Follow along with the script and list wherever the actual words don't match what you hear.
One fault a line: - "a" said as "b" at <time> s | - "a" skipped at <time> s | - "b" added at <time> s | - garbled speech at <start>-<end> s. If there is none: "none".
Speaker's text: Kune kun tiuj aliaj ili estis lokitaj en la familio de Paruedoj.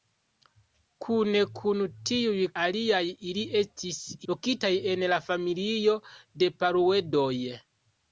none